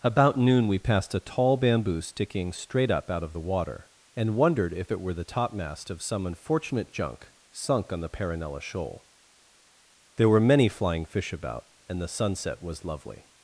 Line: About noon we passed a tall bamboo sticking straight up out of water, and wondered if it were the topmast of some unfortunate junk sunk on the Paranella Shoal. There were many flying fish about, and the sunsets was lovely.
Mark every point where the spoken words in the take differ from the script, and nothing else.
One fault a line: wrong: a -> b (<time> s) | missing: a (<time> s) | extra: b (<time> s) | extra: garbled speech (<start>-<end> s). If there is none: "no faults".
extra: the (3.3 s)
wrong: sunsets -> sunset (12.1 s)